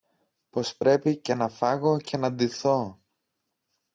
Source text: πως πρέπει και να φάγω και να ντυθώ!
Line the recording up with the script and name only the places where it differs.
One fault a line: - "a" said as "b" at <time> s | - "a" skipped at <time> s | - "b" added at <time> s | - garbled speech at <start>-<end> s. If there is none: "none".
none